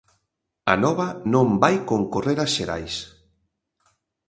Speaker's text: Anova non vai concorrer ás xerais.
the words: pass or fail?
pass